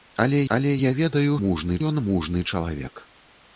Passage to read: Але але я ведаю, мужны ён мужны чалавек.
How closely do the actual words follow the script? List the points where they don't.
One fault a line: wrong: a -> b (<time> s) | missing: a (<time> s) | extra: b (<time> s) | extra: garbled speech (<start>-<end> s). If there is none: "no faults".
no faults